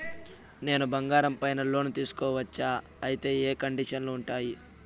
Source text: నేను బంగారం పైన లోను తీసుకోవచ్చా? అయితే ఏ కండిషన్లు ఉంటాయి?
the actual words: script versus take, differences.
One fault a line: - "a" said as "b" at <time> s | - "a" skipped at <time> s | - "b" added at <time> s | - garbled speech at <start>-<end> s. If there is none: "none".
none